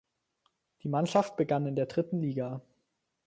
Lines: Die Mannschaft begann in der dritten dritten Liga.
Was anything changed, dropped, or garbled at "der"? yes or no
no